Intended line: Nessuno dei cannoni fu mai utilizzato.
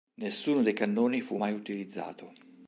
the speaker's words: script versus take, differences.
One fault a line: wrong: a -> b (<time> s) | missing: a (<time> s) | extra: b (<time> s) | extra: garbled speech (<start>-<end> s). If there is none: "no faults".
no faults